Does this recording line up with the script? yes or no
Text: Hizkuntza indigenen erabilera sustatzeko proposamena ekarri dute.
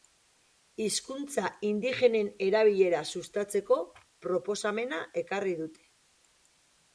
yes